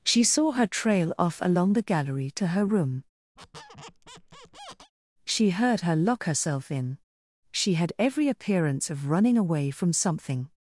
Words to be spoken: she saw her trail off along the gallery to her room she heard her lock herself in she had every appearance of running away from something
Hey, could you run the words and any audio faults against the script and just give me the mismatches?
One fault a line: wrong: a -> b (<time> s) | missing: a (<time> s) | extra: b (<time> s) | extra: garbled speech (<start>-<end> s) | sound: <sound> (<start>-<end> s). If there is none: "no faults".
sound: squeak (3.4-4.9 s)